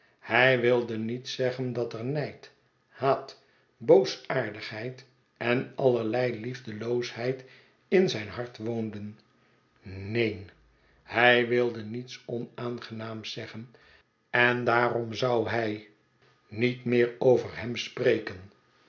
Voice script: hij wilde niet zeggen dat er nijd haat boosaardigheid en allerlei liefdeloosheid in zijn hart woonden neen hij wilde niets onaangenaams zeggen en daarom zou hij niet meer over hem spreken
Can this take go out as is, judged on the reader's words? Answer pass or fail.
pass